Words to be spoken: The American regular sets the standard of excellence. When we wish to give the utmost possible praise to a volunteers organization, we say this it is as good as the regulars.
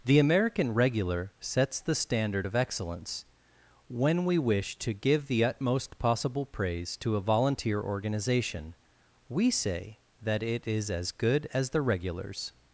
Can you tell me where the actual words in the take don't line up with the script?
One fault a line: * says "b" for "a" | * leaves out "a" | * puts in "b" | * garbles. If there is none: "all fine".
* says "volunteer" for "volunteers"
* says "that" for "this"